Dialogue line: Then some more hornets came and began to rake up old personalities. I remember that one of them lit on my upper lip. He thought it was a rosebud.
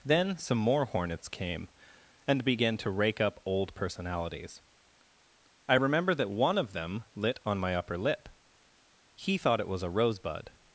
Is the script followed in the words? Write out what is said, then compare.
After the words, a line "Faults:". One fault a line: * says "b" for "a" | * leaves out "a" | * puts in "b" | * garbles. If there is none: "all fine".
Then some more hornets came and began to rake up old personalities. I remember that one of them lit on my upper lip. He thought it was a rosebud.
Faults:
all fine